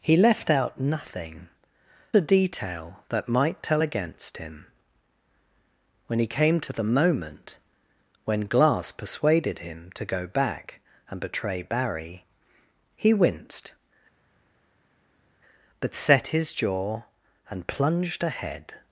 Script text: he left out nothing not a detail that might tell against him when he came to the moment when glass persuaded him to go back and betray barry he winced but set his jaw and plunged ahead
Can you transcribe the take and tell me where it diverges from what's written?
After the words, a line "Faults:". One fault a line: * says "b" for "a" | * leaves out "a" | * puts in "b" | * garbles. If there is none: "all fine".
he left out nothing a detail that might tell against him when he came to the moment when glass persuaded him to go back and betray barry he winced but set his jaw and plunged ahead
Faults:
* leaves out "not"